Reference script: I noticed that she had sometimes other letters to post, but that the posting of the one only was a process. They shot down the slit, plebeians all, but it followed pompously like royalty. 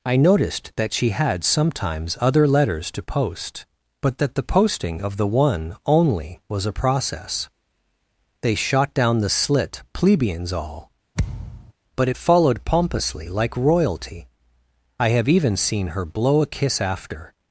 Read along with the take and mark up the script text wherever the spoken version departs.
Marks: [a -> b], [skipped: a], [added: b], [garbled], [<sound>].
I noticed that she had sometimes other letters to post, but that the posting of the one only was a process. They shot down the slit, plebeians all, [thud] but it followed pompously like royalty. [added: I have even seen her blow a kiss after]